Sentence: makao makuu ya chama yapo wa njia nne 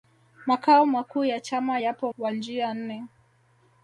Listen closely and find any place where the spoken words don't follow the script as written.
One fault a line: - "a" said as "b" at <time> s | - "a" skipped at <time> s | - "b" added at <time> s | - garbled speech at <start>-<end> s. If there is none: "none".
none